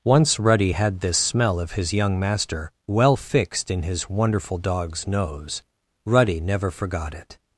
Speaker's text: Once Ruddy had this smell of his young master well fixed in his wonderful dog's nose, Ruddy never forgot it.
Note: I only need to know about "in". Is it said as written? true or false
true